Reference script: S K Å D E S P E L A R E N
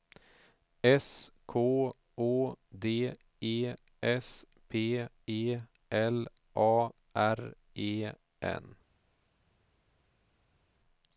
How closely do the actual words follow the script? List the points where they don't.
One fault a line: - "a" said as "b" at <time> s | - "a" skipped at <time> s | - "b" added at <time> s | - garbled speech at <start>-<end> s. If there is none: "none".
none